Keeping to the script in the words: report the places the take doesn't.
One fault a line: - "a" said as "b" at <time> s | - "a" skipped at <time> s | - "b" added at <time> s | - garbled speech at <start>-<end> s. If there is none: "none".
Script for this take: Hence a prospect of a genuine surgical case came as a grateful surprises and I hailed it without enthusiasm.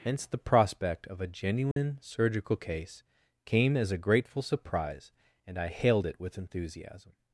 - "a" said as "the" at 0.2 s
- "surprises" said as "surprise" at 4.4 s
- "without" said as "with" at 6.2 s